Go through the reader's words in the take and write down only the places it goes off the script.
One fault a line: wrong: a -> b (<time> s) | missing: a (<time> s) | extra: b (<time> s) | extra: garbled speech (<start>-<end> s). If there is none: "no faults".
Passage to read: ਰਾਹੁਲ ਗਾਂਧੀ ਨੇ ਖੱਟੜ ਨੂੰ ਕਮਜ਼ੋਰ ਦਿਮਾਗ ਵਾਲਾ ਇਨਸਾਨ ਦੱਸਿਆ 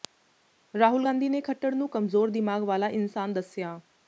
no faults